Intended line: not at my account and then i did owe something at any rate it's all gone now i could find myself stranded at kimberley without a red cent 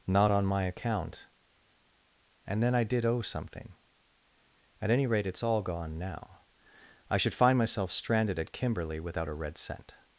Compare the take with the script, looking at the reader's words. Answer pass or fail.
fail